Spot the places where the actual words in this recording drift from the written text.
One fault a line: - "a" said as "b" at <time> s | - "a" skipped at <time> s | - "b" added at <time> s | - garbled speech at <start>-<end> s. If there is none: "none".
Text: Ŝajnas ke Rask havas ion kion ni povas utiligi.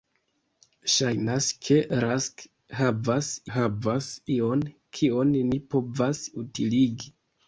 - "havas" added at 3.6 s